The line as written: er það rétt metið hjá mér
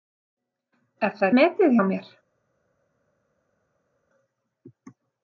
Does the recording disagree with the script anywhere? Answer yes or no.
yes